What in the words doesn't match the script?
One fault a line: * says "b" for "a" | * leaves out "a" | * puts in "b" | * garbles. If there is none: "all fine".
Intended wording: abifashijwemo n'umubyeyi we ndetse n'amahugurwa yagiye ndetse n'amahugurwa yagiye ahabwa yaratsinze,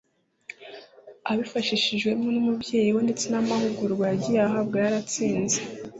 * leaves out "ndetse n'amahugurwa yagiye"